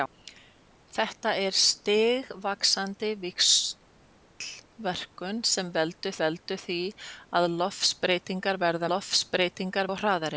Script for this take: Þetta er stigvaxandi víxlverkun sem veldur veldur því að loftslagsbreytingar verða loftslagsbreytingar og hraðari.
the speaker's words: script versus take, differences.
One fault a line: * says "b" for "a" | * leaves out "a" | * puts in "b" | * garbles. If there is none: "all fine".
all fine